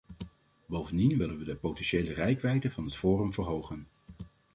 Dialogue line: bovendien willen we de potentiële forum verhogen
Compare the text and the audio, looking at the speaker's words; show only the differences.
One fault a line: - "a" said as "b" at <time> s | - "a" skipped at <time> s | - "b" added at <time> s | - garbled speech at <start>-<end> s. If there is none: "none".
- "reikwijdte van het" added at 2.1 s